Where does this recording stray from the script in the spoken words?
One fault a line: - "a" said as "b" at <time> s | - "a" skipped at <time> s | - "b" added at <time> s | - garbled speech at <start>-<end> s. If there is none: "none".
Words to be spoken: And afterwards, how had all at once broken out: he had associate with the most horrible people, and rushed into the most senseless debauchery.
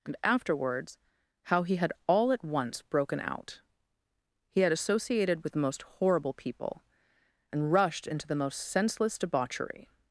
- "he" added at 1.6 s
- "associate" said as "associated" at 4.7 s